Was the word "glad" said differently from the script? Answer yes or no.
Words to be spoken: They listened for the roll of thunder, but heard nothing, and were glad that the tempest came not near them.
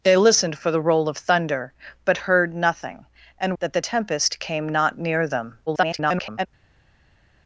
yes